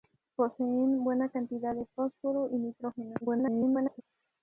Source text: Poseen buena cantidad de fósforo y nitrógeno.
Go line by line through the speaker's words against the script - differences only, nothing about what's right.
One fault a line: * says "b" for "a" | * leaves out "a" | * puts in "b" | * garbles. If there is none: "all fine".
* garbles